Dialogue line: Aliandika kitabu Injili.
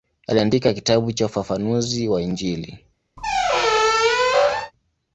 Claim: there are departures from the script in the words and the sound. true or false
true